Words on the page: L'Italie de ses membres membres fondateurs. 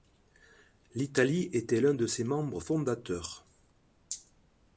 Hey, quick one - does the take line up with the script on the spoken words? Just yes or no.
no